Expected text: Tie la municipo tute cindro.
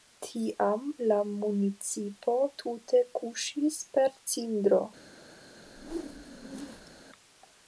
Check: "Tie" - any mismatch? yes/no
yes